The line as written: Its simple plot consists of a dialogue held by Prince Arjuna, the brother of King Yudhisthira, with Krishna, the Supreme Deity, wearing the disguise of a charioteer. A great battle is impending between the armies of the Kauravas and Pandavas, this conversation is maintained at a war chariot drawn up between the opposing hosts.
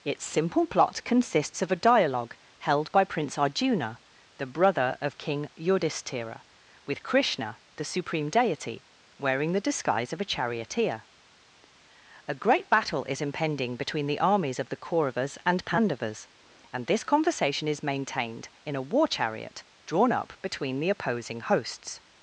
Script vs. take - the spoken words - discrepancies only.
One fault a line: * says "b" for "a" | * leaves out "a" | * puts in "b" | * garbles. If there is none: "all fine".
* puts in "and"
* says "in" for "at"